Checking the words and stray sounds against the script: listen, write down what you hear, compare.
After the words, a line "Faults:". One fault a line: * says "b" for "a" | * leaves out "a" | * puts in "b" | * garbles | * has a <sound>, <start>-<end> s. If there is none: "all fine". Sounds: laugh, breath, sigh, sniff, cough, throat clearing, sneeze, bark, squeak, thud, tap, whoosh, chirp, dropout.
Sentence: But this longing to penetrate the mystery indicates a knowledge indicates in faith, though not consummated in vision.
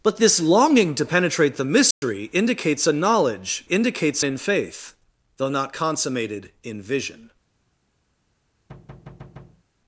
But this longing to penetrate the mystery indicates a knowledge indicates in faith, though not consummated in vision.
Faults:
* has a dropout, 1.9-2.0 s
* has a thud, 8.7-9.6 s